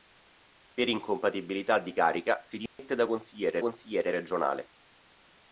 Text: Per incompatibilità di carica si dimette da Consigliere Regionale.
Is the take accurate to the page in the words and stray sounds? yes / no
no